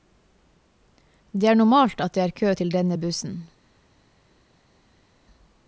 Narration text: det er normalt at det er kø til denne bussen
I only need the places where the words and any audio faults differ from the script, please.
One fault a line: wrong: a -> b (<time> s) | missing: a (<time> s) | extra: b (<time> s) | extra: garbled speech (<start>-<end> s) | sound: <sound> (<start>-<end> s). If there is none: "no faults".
no faults